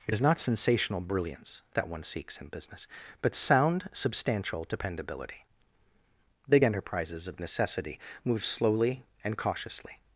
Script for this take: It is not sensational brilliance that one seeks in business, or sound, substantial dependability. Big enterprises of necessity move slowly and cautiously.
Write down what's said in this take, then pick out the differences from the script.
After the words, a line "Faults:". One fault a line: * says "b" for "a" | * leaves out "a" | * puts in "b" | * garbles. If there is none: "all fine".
It is not sensational brilliance that one seeks in business, but sound, substantial dependability. Big enterprises of necessity move slowly and cautiously.
Faults:
* says "but" for "or"